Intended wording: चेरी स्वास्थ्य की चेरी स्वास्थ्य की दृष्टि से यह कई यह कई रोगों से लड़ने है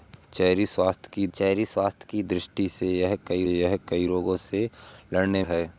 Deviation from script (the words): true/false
false